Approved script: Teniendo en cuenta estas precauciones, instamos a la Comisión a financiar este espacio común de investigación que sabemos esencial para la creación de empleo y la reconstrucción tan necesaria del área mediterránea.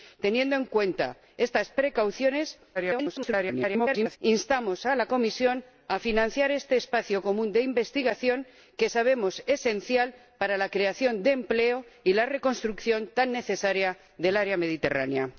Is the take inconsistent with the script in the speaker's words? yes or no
yes